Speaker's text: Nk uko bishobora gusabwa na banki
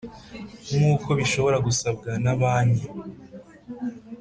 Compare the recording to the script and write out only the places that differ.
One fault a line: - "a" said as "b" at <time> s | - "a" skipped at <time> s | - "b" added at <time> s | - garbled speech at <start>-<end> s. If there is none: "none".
none